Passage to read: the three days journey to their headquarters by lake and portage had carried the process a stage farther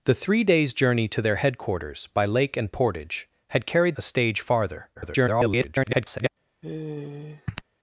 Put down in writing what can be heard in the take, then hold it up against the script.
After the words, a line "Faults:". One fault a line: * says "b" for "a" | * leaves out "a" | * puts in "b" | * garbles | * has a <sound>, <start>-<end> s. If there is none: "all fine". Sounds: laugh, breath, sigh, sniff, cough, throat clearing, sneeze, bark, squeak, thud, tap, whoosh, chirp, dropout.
the three days journey to their headquarters by lake and portage had carried a stage farther [garbled]
Faults:
* leaves out "the process"
* garbles
* has a sigh, 6.6-7.6 s